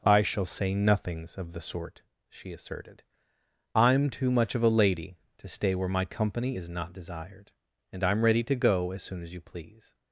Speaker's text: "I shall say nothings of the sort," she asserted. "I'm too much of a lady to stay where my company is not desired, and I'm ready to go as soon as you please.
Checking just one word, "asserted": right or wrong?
right